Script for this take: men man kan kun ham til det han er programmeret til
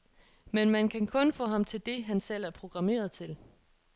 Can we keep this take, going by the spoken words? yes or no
no